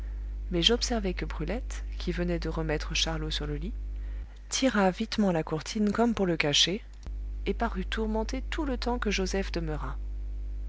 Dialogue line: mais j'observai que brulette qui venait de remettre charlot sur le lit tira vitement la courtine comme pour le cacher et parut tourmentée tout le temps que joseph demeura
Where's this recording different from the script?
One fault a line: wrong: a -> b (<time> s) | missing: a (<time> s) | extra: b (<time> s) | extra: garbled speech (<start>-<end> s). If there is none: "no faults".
no faults